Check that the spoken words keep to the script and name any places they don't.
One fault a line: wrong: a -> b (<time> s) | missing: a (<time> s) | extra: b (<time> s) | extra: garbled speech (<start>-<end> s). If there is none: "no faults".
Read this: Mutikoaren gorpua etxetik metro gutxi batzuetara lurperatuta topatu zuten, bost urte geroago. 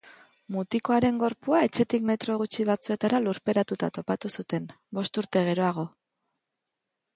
no faults